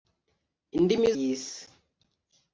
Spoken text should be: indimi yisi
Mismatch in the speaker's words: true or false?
false